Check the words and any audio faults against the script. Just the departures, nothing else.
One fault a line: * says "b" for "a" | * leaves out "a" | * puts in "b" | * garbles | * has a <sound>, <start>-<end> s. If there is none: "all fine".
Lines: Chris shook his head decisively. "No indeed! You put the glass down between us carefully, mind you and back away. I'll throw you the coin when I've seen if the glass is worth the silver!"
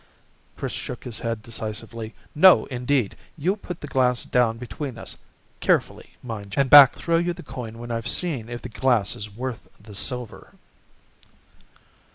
* leaves out "you"
* leaves out "away I'll"